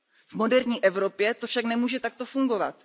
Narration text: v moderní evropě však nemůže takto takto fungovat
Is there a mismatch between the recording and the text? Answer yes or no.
yes